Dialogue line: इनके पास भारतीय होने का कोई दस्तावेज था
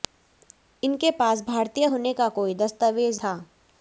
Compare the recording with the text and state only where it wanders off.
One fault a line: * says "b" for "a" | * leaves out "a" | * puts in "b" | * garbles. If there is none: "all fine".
all fine